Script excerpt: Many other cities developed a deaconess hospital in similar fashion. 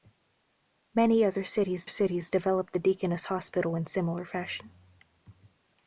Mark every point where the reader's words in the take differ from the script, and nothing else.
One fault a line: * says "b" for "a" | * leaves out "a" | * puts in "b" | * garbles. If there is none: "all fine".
* puts in "cities"